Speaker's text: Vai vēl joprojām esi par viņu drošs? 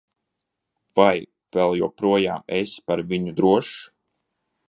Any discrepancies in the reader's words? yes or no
no